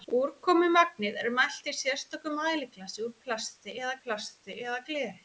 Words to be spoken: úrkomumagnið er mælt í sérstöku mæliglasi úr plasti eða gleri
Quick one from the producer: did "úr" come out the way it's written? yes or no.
yes